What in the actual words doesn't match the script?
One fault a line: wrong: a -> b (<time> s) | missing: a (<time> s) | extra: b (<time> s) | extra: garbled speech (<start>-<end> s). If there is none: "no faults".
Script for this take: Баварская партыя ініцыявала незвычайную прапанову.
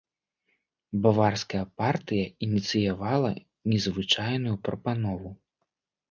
no faults